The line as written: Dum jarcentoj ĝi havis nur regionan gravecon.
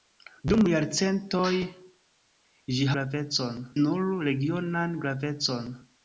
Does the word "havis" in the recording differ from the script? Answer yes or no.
yes